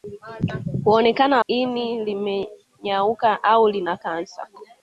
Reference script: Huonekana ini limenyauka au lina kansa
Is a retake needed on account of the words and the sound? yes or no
no